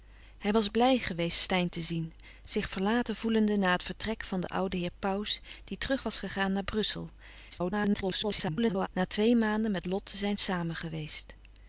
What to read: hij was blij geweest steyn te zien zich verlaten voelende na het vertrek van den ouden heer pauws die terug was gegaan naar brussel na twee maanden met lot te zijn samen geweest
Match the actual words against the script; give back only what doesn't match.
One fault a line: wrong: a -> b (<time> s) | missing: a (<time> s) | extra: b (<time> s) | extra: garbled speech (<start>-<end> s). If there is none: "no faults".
extra: garbled speech (7.5-8.9 s)